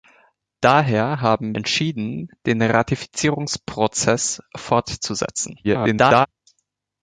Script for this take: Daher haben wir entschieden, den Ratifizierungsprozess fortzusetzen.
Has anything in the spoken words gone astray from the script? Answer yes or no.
yes